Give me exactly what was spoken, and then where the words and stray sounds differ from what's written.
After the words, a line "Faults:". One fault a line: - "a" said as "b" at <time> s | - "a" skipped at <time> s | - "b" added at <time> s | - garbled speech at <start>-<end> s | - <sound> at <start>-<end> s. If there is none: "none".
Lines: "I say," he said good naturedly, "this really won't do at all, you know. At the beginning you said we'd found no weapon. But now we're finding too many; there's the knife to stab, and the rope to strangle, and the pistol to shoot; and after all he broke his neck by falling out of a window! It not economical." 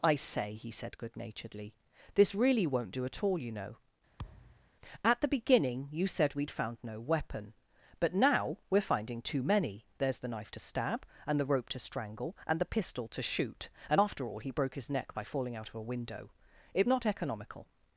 "I say," he said good naturedly, "this really won't do at all, you know. At the beginning you said we'd found no weapon. But now we're finding too many; there's the knife to stab, and the rope to strangle, and the pistol to shoot; and after all he broke his neck by falling out of a window! It not economical."
Faults:
- thud at 4.2-4.7 s